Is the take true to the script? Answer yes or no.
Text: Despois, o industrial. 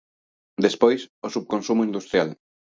no